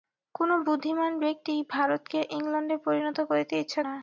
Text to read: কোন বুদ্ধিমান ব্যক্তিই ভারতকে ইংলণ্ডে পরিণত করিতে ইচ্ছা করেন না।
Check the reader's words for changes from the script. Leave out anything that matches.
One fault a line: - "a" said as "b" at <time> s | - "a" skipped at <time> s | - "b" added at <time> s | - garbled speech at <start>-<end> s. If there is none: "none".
- "করেন" skipped at 3.8 s